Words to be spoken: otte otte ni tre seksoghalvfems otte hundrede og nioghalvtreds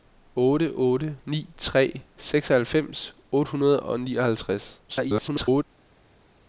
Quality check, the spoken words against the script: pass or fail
fail